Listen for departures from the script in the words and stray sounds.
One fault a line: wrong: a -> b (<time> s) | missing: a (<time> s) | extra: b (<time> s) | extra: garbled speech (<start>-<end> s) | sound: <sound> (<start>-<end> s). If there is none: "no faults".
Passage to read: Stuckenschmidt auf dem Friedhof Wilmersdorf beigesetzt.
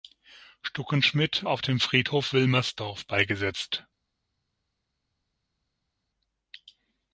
no faults